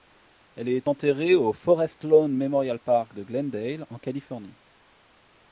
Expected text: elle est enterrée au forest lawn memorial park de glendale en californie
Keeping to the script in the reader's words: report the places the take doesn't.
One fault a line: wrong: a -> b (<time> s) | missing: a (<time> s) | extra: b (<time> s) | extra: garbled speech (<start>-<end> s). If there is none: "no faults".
no faults